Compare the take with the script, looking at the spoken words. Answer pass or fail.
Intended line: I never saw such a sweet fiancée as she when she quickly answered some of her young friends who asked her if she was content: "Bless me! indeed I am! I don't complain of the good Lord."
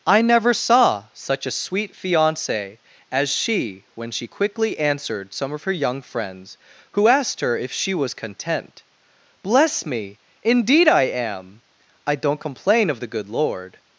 pass